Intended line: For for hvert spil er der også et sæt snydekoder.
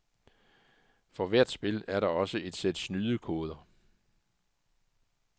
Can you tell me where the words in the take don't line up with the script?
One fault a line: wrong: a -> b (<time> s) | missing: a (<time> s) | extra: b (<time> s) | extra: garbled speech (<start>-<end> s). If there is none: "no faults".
missing: for (1.3 s)